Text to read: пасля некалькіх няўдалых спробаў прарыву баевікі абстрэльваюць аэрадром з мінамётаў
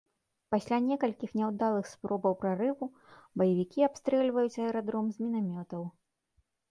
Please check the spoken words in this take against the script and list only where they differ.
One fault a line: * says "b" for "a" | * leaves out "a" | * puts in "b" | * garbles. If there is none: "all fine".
all fine